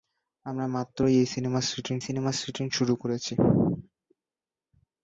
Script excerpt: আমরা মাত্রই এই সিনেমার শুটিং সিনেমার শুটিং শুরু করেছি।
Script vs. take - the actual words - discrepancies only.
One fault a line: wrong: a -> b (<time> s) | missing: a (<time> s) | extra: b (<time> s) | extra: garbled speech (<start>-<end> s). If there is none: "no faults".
no faults